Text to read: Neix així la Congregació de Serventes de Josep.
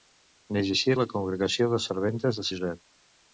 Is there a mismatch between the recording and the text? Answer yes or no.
no